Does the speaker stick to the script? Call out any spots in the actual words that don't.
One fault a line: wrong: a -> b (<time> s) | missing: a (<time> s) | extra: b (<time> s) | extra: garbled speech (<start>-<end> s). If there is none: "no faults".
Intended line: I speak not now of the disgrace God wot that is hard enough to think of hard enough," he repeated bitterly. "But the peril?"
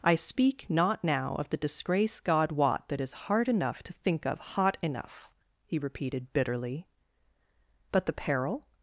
wrong: hard -> hot (4.4 s)